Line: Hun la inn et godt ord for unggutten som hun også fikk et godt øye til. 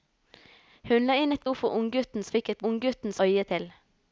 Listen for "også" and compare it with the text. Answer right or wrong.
wrong